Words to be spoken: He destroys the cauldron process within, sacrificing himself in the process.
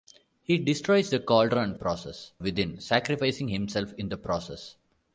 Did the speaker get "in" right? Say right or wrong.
right